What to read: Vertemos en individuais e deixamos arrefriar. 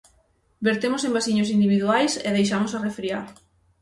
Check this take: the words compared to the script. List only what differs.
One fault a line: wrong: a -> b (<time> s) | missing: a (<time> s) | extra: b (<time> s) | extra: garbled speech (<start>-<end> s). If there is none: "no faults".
extra: vasiños (1.2 s)